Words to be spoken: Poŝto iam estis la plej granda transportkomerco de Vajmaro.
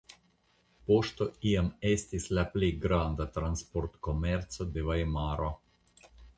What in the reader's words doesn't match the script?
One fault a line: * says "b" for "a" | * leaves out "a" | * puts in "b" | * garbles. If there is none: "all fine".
all fine